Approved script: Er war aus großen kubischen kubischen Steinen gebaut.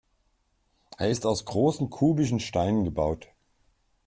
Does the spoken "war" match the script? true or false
false